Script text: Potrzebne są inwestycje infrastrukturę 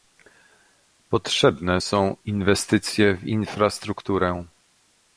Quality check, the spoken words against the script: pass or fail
fail